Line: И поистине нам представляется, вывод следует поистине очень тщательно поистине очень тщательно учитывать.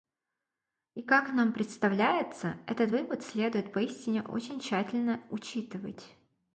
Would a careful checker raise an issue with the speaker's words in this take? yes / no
yes